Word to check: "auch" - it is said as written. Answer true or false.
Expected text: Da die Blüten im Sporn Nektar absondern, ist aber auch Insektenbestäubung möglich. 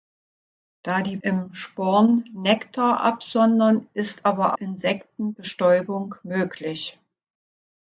false